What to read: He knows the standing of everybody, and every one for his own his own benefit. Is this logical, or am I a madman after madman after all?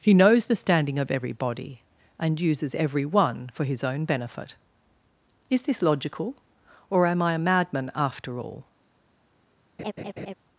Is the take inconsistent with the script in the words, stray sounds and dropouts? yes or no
yes